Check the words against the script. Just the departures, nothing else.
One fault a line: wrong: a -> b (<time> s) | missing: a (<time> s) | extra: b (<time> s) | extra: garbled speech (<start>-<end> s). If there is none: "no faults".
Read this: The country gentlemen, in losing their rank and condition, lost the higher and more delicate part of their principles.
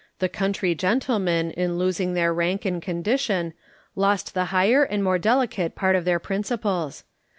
no faults